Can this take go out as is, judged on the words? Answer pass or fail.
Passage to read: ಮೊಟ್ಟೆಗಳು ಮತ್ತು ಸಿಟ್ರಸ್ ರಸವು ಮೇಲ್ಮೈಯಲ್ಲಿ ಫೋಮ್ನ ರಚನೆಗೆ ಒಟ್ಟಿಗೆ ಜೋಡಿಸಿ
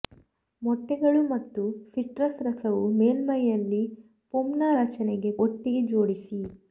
pass